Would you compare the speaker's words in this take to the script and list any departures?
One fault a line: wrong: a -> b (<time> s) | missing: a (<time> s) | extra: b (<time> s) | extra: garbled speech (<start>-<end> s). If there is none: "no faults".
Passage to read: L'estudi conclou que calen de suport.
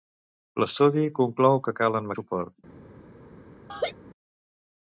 no faults